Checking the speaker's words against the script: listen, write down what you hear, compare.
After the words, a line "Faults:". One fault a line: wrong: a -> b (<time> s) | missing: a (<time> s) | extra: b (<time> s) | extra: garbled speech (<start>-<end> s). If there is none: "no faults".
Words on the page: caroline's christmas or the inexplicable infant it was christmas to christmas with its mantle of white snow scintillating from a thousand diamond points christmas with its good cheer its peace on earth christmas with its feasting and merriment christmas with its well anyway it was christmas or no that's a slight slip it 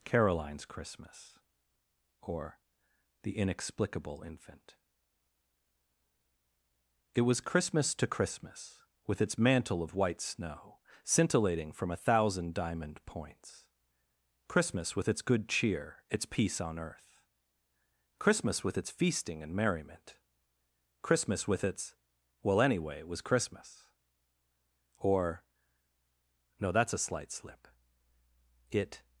caroline's christmas or the inexplicable infant it was christmas to christmas with its mantle of white snow scintillating from a thousand diamond points christmas with its good cheer its peace on earth christmas with its feasting and merriment christmas with its well anyway it was christmas or no that's a slight slip it
Faults:
no faults